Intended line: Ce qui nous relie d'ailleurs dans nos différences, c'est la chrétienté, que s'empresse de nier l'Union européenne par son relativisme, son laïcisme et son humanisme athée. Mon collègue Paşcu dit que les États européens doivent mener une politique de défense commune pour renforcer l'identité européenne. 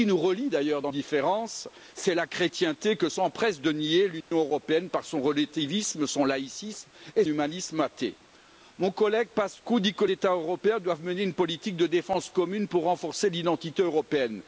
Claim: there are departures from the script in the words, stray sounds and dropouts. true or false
true